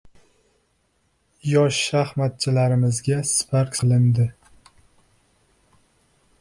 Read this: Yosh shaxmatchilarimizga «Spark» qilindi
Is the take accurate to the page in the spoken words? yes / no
yes